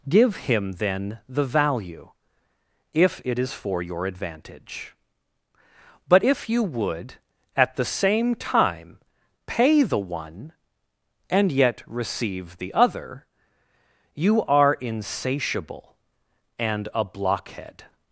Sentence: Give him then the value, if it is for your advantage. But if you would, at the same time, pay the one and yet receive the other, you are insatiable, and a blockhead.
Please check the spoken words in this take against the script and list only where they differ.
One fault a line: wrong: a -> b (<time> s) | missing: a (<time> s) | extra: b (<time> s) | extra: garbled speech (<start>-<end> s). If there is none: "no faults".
no faults